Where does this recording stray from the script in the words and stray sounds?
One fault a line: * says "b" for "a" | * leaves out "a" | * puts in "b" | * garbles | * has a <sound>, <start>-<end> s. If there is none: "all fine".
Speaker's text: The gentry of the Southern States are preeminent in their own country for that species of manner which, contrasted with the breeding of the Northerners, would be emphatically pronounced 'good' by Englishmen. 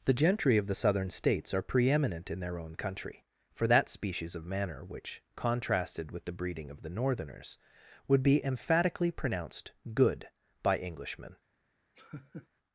* has a laugh, 12.0-12.5 s